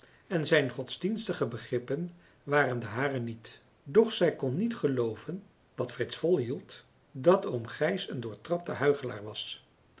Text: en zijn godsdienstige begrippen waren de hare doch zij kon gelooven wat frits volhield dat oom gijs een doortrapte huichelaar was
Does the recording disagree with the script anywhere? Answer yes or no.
yes